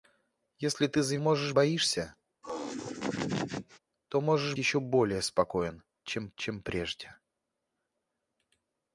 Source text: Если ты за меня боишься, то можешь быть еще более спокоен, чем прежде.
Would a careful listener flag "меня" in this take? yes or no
yes